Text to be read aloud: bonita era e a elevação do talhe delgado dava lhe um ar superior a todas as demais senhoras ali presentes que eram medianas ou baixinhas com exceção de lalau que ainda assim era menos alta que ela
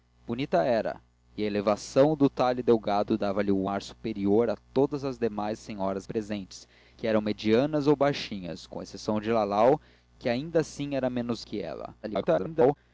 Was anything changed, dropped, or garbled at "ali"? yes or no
yes